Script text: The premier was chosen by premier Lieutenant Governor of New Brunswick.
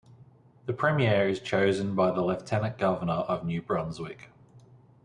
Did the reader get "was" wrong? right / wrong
wrong